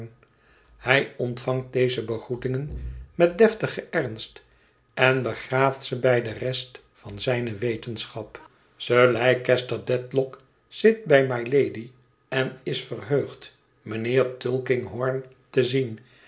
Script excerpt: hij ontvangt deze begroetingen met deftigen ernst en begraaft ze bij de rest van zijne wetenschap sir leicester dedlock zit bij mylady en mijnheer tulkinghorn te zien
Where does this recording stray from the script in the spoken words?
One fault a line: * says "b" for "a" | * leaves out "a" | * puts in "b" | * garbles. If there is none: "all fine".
* puts in "is verheugd"